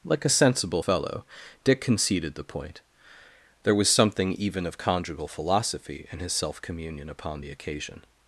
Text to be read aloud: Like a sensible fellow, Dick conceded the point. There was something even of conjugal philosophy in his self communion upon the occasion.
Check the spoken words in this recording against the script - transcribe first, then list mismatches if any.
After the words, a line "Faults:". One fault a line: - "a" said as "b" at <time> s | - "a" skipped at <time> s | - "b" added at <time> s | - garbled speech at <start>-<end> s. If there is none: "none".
Like a sensible fellow, Dick conceded the point. There was something even of conjugal philosophy in his self communion upon the occasion.
Faults:
none